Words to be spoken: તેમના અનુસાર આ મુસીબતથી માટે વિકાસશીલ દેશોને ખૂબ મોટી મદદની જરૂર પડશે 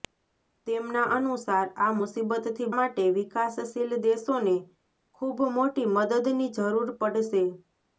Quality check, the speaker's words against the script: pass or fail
pass